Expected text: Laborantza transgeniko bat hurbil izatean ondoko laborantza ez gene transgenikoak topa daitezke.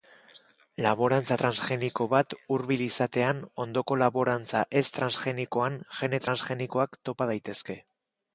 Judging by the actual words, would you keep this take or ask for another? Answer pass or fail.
fail